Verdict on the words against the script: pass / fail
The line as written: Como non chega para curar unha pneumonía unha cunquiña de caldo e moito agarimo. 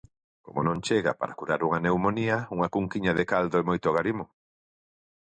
pass